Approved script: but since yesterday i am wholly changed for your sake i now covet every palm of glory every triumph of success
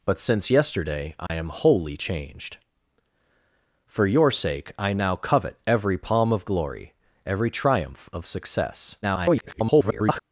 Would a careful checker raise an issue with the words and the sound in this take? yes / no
yes